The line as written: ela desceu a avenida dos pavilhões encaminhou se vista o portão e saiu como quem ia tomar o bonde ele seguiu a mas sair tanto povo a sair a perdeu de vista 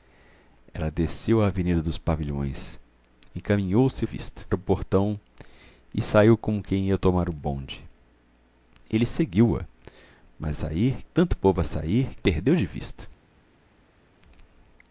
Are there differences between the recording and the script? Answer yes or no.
no